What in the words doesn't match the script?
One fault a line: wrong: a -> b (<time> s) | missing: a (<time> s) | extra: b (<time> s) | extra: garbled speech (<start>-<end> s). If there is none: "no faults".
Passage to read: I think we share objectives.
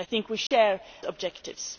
no faults